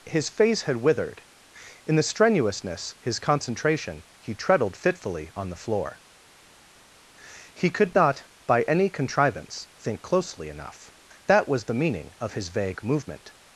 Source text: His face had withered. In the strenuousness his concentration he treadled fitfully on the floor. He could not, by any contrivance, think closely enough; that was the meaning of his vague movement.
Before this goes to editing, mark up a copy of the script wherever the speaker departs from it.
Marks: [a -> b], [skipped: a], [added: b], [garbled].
His face had withered. In the strenuousness his concentration he treadled fitfully on the floor. He could not, by any contrivance, think closely enough; that was the meaning of his vague movement.